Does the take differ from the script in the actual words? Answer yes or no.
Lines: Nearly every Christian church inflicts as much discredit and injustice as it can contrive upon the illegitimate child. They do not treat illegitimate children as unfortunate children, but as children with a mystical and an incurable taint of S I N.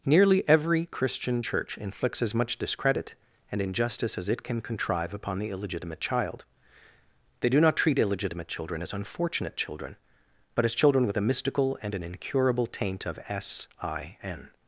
no